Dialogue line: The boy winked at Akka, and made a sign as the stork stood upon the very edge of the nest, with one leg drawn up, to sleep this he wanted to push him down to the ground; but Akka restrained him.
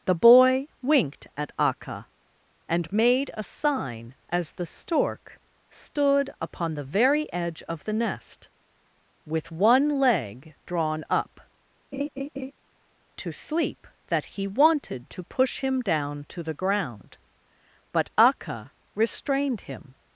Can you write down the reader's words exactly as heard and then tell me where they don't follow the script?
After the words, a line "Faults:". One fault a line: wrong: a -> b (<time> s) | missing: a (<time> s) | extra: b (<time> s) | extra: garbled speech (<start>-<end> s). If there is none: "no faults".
The boy winked at Akka, and made a sign as the stork stood upon the very edge of the nest, with one leg drawn up, to sleep that he wanted to push him down to the ground; but Akka restrained him.
Faults:
wrong: this -> that (14.1 s)